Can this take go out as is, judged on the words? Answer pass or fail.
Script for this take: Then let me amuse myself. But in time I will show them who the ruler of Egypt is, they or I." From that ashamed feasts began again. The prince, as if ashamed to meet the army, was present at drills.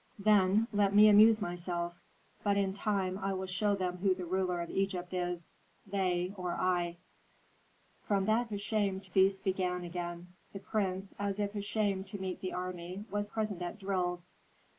pass